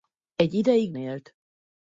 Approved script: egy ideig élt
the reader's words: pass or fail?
pass